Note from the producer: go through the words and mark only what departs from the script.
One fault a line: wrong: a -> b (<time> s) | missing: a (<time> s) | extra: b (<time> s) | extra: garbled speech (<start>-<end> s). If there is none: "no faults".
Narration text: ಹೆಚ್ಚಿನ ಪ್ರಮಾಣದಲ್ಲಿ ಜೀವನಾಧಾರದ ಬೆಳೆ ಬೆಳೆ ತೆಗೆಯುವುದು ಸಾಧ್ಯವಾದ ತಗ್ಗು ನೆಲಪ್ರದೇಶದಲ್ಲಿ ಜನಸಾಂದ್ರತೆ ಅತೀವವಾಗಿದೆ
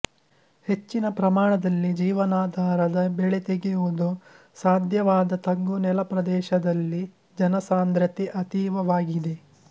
missing: ಬೆಳೆ (3.4 s)